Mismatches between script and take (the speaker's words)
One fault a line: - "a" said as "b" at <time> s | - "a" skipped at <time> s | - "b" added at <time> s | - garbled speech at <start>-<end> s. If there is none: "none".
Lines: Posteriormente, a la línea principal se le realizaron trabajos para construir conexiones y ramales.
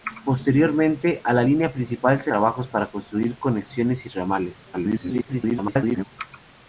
- "le realizaron" skipped at 2.3 s
- garbled speech at 4.7-6.0 s